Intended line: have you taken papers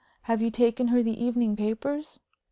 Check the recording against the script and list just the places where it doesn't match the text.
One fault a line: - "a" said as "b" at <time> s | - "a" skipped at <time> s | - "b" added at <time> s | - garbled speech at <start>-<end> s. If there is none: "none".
- "her the evening" added at 0.9 s